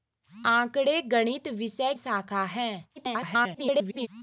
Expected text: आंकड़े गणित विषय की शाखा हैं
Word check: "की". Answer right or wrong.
wrong